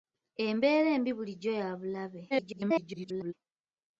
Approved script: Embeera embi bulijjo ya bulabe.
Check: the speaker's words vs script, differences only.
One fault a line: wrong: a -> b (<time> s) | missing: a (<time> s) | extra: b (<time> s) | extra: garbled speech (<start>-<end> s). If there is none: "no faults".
extra: garbled speech (2.3-3.3 s)